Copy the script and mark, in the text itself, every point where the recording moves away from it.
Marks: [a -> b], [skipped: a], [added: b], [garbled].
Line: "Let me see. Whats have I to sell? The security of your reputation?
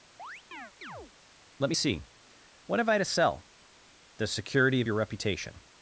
"Let me see. [Whats -> What] have I to sell? The security of your reputation?